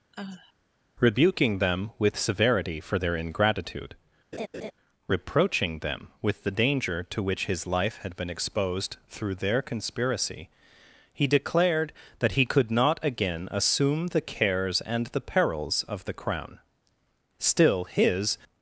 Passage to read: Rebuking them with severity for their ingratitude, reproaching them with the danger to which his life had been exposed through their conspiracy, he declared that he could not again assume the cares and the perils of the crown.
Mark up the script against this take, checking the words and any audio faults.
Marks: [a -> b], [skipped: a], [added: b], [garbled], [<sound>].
[sigh] Rebuking them with severity for their ingratitude, [laugh] reproaching them with the danger to which his life had been exposed through their conspiracy, he declared that he could not again assume the cares and the perils of the crown. [added: Still his]